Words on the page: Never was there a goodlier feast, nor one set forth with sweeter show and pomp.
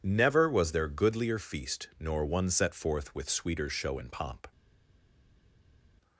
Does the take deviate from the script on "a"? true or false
true